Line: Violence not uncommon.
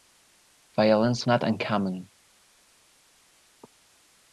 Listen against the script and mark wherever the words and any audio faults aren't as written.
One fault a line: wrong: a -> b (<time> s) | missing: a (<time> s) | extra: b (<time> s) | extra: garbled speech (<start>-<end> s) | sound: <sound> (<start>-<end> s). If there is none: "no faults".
no faults